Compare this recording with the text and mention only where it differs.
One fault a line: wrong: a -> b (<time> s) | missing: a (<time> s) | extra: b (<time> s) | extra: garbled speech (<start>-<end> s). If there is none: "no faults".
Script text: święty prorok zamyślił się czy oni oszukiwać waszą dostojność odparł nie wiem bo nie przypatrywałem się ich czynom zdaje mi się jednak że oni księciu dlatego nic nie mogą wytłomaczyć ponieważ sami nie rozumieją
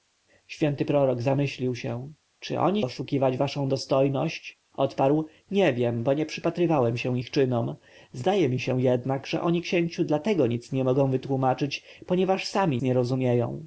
no faults